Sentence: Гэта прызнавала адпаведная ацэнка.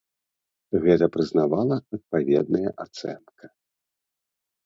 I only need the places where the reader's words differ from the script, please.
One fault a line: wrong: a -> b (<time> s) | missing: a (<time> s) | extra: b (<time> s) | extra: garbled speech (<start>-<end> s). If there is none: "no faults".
no faults